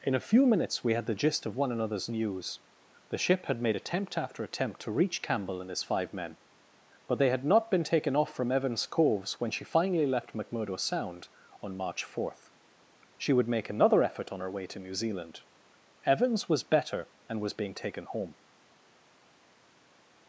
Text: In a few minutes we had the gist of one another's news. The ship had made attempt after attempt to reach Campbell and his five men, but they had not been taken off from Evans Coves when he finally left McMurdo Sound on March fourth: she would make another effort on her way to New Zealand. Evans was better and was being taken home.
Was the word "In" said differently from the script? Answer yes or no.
no